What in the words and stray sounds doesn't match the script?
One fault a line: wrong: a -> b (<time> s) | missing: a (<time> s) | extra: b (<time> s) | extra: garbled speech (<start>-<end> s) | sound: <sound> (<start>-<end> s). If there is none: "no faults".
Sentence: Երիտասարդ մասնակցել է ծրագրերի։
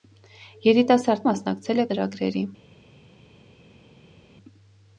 no faults